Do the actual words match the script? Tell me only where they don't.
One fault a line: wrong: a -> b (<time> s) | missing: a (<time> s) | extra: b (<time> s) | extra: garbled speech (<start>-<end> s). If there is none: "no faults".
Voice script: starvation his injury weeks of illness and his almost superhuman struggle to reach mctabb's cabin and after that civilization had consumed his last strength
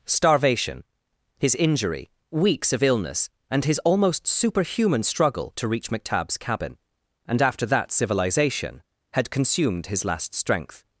no faults